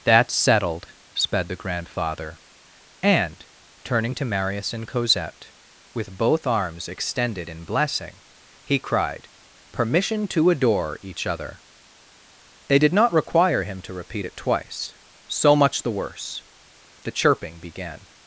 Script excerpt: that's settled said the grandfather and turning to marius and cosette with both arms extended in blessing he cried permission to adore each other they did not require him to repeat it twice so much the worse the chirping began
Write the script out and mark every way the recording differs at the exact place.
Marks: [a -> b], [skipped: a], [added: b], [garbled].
that's settled [said -> sped] the grandfather and turning to marius and cosette with both arms extended in blessing he cried permission to adore each other they did not require him to repeat it twice so much the worse the chirping began